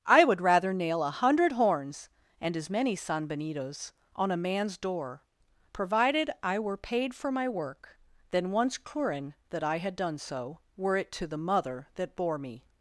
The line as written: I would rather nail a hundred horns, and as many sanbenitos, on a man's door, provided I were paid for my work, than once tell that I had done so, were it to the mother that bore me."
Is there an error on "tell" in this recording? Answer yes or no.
yes